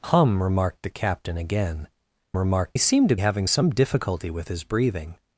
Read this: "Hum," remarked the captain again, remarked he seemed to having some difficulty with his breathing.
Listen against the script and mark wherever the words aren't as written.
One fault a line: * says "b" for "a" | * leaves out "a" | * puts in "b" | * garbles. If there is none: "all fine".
all fine